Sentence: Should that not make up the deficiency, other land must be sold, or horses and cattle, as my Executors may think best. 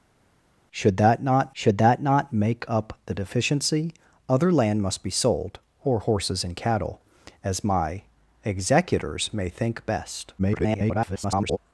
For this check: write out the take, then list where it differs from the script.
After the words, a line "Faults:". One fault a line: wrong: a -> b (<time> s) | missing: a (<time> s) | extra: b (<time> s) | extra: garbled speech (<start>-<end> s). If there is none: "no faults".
Should that not should that not make up the deficiency, other land must be sold, or horses and cattle, as my Executors may think best. [garbled]
Faults:
extra: should that not (1.5 s)
extra: garbled speech (10.4-11.6 s)